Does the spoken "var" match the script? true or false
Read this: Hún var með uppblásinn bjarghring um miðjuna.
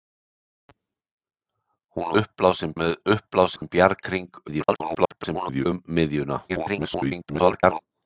false